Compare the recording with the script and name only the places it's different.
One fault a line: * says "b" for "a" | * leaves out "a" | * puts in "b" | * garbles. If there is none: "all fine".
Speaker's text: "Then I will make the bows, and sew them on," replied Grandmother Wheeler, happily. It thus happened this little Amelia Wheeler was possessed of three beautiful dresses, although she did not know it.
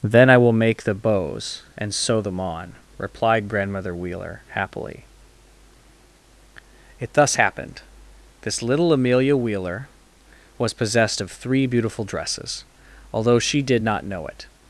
all fine